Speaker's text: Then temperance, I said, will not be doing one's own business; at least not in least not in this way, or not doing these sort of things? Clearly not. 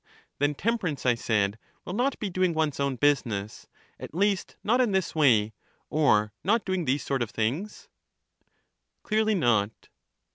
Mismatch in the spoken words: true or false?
true